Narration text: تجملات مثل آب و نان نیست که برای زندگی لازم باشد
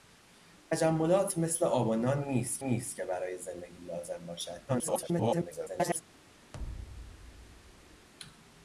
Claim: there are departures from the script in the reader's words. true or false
true